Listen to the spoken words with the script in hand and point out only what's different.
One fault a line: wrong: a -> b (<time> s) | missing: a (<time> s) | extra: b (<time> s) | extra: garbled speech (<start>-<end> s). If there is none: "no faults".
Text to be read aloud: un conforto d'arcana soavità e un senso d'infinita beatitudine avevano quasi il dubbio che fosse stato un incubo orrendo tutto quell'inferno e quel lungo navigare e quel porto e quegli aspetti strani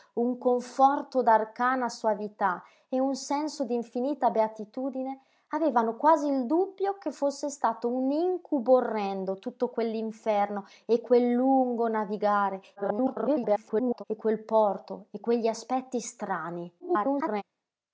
extra: garbled speech (12.8-14.0 s)
extra: garbled speech (16.8-17.4 s)